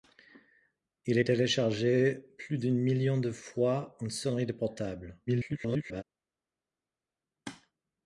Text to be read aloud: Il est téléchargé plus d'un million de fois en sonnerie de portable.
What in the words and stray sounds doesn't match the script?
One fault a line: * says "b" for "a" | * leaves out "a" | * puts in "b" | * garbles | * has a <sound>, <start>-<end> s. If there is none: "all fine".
* garbles